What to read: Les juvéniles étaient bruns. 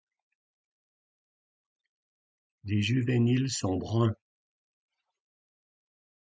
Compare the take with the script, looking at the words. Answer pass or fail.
fail